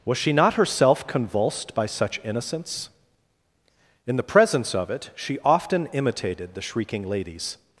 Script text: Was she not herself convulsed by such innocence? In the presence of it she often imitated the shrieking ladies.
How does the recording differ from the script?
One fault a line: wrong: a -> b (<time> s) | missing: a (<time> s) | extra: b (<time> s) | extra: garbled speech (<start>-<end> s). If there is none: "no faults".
no faults